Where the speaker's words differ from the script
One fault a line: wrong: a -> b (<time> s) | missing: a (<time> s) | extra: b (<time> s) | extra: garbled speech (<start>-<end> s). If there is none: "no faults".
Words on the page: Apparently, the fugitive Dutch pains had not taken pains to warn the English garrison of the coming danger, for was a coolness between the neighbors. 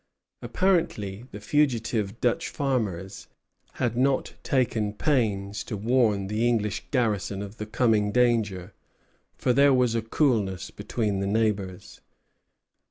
wrong: pains -> farmers (2.5 s)
extra: there (9.5 s)